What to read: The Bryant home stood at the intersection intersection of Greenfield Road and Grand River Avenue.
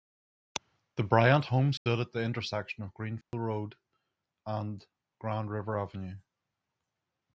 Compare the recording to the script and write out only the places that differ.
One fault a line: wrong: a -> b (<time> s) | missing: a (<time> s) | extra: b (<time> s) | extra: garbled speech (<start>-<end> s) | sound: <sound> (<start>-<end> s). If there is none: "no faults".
sound: dropout (1.8-1.9 s)
missing: intersection (2.8 s)
sound: dropout (3.2-3.3 s)